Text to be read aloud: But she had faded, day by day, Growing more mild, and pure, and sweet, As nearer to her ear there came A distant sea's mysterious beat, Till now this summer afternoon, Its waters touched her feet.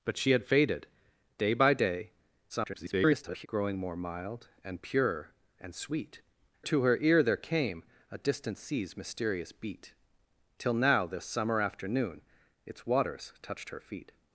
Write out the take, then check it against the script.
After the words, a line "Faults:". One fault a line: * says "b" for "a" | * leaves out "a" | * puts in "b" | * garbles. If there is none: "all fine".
But she had faded, day by day, [garbled] Growing more mild, and pure, and sweet, To her ear there came A distant sea's mysterious beat, Till now this summer afternoon, Its waters touched her feet.
Faults:
* garbles
* leaves out "As nearer"